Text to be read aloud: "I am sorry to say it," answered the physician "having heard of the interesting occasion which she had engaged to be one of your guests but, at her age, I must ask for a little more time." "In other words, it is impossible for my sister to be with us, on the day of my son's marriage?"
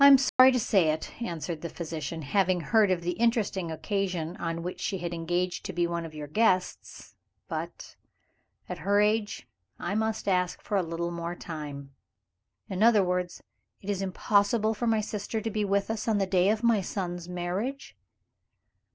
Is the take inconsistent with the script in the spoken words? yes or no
yes